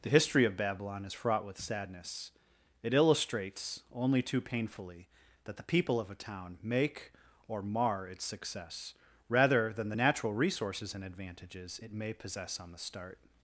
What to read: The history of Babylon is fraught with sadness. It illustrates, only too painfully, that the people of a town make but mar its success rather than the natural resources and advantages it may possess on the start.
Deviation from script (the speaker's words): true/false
true